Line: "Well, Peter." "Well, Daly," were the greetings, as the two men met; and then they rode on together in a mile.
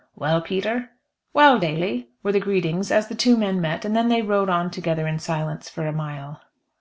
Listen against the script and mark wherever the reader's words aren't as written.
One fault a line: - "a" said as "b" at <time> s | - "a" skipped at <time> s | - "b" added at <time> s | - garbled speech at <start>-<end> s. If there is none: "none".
- "silence for" added at 5.2 s